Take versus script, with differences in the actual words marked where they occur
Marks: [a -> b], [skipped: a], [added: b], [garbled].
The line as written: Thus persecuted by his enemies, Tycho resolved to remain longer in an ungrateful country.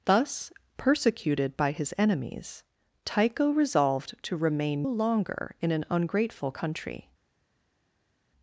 Thus persecuted by his enemies, Tycho resolved to remain longer in an ungrateful country.